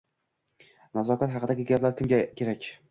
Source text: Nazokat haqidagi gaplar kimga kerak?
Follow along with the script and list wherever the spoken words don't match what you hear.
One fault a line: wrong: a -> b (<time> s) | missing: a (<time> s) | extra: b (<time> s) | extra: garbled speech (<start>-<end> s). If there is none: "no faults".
no faults